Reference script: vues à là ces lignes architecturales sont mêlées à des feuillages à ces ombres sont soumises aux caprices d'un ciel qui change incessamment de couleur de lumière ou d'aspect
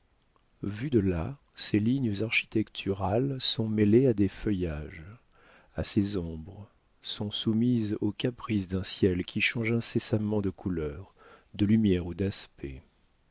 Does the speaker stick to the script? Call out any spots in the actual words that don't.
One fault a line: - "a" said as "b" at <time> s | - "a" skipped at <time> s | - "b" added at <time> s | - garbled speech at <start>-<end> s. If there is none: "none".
- "à" said as "de" at 0.9 s